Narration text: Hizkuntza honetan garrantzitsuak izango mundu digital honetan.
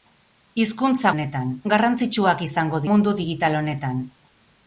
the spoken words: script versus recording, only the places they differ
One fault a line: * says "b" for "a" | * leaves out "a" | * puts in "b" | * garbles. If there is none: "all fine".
all fine